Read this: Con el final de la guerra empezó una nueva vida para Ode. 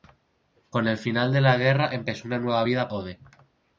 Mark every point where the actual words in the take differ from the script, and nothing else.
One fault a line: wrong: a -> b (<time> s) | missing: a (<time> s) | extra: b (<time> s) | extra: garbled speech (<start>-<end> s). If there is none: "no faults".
missing: para (2.9 s)